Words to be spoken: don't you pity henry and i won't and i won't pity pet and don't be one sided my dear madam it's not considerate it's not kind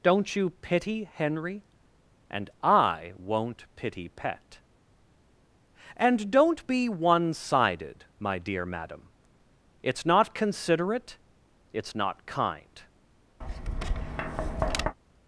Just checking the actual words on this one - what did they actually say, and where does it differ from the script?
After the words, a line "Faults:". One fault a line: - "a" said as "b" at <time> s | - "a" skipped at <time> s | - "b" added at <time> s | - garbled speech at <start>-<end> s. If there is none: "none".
don't you pity henry and i won't pity pet and don't be one sided my dear madam it's not considerate it's not kind
Faults:
- "and i won't" skipped at 3.6 s